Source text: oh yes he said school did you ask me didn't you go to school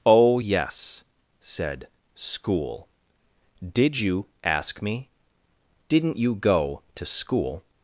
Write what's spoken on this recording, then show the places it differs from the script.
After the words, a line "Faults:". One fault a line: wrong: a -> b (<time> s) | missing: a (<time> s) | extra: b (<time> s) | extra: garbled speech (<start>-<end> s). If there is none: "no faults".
oh yes said school did you ask me didn't you go to school
Faults:
missing: he (1.0 s)